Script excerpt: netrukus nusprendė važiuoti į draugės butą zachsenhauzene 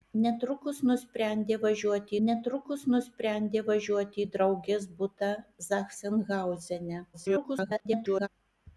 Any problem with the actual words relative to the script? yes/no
yes